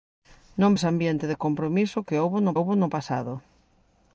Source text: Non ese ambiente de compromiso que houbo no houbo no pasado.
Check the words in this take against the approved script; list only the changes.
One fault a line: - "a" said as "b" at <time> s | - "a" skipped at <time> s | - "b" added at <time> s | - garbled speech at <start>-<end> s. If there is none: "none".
none